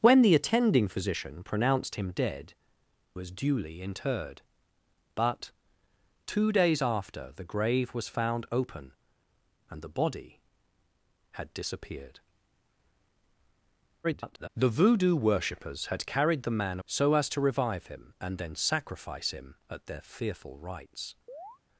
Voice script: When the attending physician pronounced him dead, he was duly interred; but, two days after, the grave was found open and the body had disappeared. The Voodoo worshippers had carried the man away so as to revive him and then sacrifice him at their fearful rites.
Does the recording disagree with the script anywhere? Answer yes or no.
yes